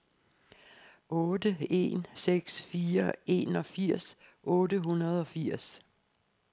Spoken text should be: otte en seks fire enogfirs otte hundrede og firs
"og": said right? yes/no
yes